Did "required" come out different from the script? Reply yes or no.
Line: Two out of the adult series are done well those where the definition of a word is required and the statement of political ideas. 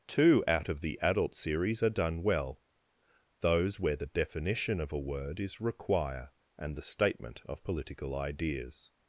yes